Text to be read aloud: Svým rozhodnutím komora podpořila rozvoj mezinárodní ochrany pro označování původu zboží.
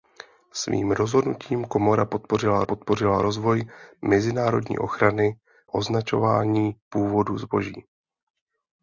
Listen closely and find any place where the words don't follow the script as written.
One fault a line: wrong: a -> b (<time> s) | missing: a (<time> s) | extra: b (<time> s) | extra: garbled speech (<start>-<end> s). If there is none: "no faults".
extra: podpořila (2.6 s)
missing: pro (5.4 s)